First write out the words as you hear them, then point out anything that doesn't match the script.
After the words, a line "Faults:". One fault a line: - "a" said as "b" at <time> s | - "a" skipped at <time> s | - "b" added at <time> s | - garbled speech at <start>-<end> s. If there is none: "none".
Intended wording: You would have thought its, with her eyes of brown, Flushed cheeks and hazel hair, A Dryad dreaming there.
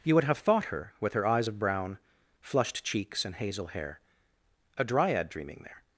You would have thought her, with her eyes of brown, Flushed cheeks and hazel hair, A Dryad dreaming there.
Faults:
- "its" said as "her" at 0.7 s